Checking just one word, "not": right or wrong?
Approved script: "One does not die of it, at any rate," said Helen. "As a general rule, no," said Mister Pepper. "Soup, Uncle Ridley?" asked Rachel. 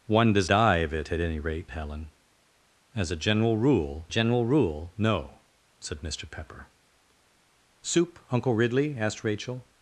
wrong